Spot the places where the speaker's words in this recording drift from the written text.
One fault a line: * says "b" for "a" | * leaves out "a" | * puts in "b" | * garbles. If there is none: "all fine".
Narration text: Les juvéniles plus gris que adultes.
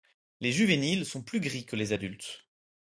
* puts in "sont"
* puts in "les"